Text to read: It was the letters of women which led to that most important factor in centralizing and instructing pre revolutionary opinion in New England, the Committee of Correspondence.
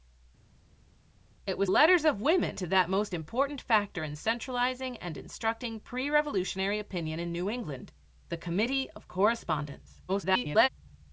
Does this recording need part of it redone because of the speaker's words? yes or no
yes